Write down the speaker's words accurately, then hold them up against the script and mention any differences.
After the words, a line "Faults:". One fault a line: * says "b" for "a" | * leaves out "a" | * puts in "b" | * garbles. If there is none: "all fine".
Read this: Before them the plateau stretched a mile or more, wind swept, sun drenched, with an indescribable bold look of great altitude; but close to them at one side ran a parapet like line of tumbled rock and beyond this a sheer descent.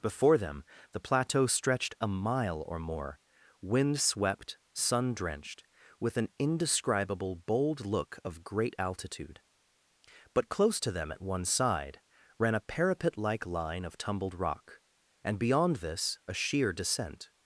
Before them the plateau stretched a mile or more, wind swept, sun drenched, with an indescribable bold look of great altitude; but close to them at one side ran a parapet like line of tumbled rock and beyond this a sheer descent.
Faults:
all fine